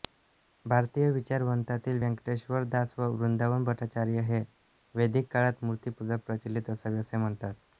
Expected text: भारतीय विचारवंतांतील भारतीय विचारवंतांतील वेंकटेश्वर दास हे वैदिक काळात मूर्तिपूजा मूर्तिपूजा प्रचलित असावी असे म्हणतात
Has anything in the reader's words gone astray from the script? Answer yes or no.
yes